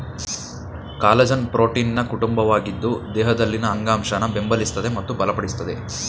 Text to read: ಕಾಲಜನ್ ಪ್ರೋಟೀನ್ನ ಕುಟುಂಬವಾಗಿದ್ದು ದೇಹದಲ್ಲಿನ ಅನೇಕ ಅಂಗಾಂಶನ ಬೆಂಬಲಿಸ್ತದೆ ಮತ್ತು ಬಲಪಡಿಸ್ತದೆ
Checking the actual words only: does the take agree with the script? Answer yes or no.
no